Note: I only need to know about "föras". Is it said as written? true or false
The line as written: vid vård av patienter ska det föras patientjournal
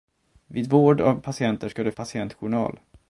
false